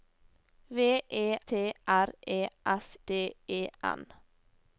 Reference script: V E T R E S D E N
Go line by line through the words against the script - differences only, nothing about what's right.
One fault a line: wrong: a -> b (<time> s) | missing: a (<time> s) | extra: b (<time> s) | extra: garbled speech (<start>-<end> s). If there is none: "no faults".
no faults